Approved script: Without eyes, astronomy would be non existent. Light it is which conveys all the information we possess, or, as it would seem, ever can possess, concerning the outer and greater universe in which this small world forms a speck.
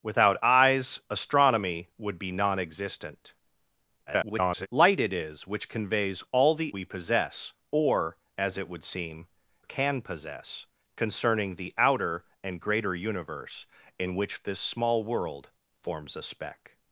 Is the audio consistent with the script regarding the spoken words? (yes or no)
no